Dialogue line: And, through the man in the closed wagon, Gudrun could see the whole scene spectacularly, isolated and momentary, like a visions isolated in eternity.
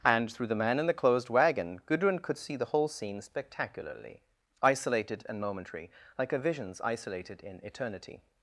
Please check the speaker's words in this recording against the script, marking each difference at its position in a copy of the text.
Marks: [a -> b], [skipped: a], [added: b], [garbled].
And, through the man in the closed wagon, Gudrun could see the whole scene spectacularly, isolated and momentary, like a visions isolated in eternity.